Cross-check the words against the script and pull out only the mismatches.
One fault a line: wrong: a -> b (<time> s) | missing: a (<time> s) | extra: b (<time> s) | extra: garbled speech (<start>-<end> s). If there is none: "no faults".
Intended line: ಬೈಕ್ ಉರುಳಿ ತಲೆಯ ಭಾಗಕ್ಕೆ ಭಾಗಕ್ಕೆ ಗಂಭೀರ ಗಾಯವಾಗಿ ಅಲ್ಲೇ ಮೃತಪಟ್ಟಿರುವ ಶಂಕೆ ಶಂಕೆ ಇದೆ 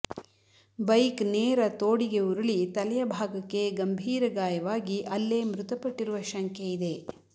extra: ನೇರ ತೋಡಿಗೆ (1.3 s)
missing: ಭಾಗಕ್ಕೆ (3.6 s)
missing: ಶಂಕೆ (6.7 s)